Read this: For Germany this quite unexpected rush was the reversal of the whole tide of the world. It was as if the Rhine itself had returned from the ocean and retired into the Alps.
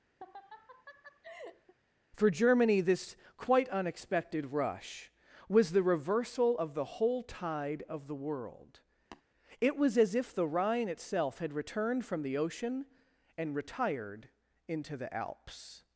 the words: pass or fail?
pass